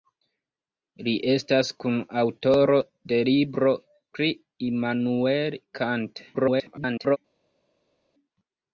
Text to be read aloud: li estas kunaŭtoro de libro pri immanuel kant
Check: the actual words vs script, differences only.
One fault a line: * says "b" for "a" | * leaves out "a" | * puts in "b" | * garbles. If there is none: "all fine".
* garbles